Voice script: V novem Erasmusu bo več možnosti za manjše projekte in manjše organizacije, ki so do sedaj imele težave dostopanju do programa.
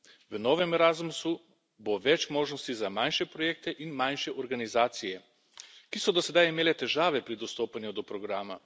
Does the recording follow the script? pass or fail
fail